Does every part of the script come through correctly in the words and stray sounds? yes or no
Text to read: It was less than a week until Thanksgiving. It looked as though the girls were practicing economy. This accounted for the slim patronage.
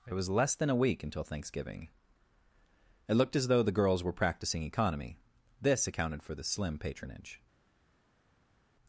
yes